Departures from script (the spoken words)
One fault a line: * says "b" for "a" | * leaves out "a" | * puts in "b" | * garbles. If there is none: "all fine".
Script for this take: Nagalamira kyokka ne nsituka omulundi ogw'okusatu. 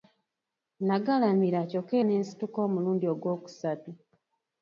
all fine